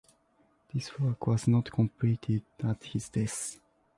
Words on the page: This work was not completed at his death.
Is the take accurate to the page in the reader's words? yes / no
yes